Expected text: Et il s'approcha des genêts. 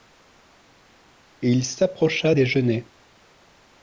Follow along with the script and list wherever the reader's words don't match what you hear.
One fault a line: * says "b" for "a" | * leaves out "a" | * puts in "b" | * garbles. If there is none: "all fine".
all fine